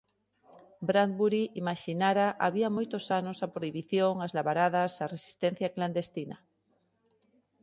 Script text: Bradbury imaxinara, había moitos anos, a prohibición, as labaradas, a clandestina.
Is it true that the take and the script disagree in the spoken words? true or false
true